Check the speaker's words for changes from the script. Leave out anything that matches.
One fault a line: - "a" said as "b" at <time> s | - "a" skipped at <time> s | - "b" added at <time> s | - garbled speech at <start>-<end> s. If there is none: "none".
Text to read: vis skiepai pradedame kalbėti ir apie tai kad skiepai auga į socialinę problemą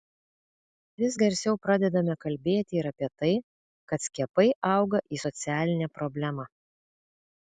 - "skiepai" said as "garsiau" at 1.2 s